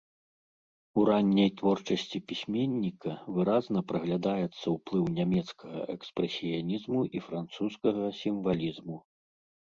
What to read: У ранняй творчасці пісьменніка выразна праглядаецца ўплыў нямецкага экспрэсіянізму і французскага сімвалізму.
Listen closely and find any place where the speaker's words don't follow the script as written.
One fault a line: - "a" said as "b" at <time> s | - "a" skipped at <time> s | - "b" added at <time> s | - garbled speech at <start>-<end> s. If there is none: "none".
none